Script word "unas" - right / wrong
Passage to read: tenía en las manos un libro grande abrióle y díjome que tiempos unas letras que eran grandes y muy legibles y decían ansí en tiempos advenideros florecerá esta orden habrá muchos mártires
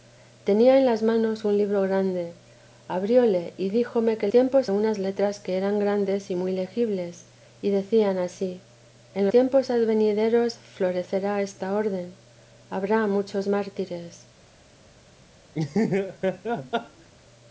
right